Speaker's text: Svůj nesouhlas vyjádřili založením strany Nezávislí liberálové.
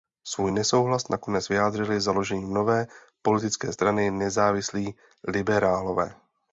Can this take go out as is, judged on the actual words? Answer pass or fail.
fail